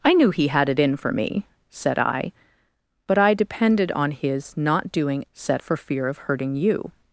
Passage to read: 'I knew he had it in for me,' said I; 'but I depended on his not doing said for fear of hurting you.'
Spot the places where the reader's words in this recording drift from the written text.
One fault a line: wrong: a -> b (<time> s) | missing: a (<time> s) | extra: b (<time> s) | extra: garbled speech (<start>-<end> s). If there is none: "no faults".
no faults